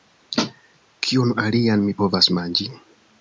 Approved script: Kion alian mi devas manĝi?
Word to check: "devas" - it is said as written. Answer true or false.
false